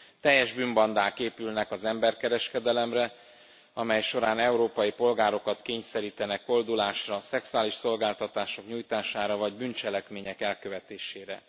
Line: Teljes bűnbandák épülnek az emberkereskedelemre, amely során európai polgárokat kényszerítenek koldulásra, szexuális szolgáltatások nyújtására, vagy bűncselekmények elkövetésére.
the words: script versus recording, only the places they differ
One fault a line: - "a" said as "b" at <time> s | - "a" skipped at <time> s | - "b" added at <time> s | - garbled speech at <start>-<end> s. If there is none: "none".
none